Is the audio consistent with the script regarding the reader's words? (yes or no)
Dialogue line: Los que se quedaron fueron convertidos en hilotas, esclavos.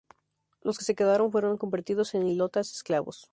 yes